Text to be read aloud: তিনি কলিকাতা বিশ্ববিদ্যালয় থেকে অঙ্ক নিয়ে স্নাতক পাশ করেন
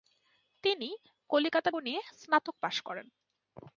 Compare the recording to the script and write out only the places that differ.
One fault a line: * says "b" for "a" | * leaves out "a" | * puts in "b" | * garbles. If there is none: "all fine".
* leaves out "বিশ্ববিদ্যালয় থেকে অঙ্ক"